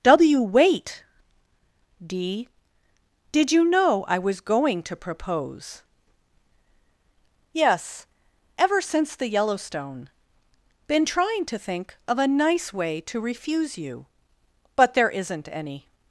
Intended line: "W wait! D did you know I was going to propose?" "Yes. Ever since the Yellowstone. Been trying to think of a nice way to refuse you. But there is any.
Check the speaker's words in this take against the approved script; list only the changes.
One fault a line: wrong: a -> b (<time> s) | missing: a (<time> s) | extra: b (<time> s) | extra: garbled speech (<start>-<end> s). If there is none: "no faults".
wrong: is -> isn't (15.1 s)